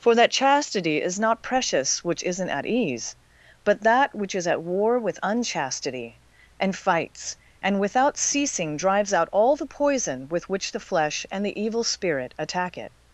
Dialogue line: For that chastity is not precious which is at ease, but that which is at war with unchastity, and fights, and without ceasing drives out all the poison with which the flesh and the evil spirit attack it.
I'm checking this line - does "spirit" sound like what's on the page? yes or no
yes